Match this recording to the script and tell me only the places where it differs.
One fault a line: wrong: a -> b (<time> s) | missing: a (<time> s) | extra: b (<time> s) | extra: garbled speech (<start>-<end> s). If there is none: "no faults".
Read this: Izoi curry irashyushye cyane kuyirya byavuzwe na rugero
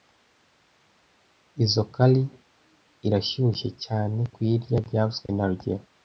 no faults